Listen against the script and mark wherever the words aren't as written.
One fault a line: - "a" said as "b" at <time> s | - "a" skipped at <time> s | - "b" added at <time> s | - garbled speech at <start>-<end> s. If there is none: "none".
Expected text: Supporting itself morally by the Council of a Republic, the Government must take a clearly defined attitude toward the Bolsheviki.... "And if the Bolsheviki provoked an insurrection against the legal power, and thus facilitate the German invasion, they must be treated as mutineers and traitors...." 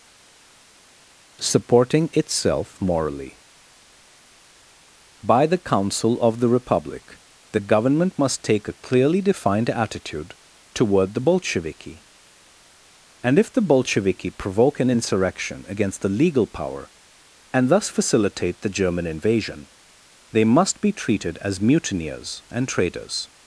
- "a" said as "the" at 6.4 s
- "provoked" said as "provoke" at 14.3 s